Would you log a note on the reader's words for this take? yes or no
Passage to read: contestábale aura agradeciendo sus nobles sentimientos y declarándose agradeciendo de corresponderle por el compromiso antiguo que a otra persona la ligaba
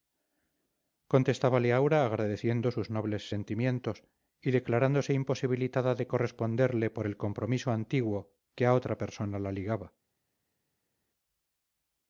yes